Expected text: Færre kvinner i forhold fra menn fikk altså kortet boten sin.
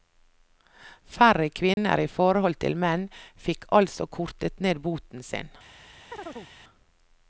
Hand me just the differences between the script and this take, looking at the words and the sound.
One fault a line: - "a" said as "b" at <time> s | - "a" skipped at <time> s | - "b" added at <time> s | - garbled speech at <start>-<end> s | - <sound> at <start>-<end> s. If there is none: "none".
- dropout at 1.7-1.8 s
- "fra" said as "til" at 2.6 s
- "ned" added at 4.7 s
- chirp at 6.1-6.5 s